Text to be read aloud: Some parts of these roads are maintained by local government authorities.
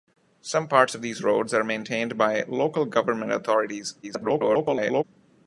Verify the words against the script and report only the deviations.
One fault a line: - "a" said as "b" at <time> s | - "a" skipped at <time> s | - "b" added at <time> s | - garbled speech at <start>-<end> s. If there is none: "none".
- garbled speech at 4.0-5.0 s